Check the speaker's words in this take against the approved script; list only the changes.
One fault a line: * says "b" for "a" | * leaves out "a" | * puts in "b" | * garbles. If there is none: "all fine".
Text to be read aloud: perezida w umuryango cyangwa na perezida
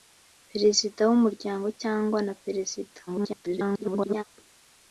* garbles